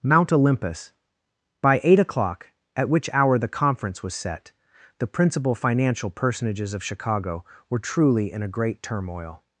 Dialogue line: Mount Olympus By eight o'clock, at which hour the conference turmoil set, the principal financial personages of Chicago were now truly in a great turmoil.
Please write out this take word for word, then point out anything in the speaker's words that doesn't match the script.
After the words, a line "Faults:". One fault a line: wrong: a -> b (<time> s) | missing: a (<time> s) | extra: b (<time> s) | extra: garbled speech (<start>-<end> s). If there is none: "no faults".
Mount Olympus By eight o'clock, at which hour the conference was set, the principal financial personages of Chicago were truly in a great turmoil.
Faults:
wrong: turmoil -> was (4.0 s)
missing: now (7.8 s)